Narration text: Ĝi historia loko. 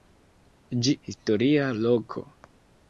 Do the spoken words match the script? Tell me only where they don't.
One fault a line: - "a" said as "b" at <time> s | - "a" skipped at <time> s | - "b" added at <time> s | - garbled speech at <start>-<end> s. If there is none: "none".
none